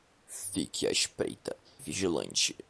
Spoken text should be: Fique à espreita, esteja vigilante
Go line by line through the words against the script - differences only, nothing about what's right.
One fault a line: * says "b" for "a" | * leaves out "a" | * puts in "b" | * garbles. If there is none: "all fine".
* leaves out "esteja"